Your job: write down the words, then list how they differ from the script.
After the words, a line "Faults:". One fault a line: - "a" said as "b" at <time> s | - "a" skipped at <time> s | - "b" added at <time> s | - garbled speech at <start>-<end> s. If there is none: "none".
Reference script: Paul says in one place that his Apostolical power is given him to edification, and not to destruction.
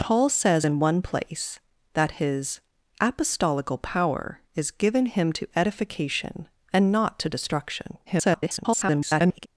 Paul says in one place that his Apostolical power is given him to edification, and not to destruction. [garbled]
Faults:
- garbled speech at 8.1-9.5 s